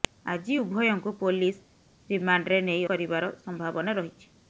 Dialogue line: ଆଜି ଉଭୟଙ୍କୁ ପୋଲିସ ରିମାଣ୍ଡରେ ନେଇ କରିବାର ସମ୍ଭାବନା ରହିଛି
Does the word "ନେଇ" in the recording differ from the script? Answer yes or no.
no